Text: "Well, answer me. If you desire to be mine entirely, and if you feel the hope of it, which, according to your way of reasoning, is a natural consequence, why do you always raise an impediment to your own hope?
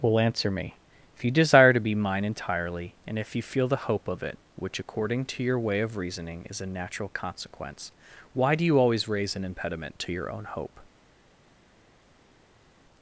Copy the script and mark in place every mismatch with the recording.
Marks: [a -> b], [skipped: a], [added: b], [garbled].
"Well, answer me. If you desire to be mine entirely, and if you feel the hope of it, which, according to your way of reasoning, is a natural consequence, why do you always raise an impediment to your own hope?